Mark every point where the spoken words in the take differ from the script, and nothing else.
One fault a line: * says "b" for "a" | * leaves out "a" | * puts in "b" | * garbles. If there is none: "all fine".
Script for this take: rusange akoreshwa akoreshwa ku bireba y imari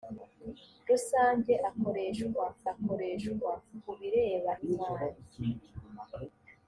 all fine